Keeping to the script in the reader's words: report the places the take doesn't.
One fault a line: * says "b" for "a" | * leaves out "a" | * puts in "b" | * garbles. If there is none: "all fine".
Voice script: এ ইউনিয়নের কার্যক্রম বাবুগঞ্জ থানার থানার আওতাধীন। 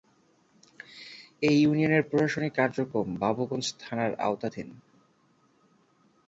* puts in "প্রশাসনিক"
* leaves out "থানার"